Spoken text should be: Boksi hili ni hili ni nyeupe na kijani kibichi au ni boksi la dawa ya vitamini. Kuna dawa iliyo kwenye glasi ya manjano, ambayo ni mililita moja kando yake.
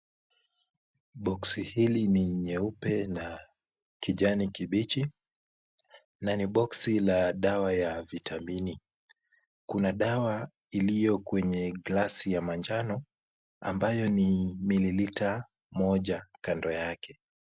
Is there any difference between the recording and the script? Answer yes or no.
yes